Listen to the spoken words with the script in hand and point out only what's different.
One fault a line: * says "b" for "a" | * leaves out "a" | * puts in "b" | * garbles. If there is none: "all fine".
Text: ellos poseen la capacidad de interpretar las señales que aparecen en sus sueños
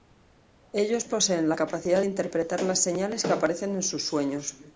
* leaves out "de"